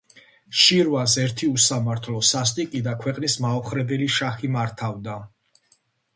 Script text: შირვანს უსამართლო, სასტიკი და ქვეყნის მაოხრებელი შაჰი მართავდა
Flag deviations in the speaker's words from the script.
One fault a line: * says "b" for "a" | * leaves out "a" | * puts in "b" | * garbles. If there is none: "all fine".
* puts in "ერთი"